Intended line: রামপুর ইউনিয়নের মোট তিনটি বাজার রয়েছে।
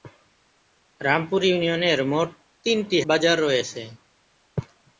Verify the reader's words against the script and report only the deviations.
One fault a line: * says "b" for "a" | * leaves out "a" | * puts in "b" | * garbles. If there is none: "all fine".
all fine